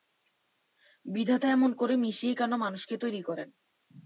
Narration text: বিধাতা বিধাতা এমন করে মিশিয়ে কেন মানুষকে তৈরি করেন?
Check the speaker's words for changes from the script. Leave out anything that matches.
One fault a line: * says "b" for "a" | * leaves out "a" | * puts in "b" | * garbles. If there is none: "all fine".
* leaves out "বিধাতা"